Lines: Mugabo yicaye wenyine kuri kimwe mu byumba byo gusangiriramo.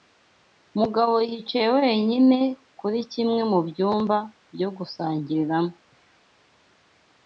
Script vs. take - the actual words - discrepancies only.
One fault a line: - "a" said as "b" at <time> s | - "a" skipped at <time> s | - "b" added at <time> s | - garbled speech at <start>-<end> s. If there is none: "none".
none